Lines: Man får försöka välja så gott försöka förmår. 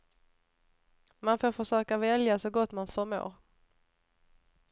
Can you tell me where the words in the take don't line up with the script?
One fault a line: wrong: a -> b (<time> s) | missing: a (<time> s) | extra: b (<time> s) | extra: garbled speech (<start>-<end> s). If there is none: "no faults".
wrong: försöka -> man (2.7 s)